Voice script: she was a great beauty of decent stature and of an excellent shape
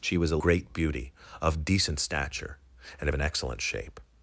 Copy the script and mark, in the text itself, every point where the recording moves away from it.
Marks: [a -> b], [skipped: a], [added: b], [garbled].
she was a great beauty of decent stature and of an excellent shape